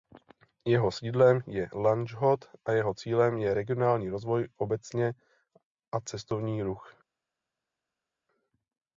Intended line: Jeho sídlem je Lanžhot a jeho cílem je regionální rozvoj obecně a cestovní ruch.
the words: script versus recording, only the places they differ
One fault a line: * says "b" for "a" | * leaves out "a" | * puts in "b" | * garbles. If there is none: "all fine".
all fine